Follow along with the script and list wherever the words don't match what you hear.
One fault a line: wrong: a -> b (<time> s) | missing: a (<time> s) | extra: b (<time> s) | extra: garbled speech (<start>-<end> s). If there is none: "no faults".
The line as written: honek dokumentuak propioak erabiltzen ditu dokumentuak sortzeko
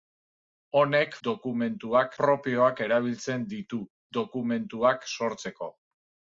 no faults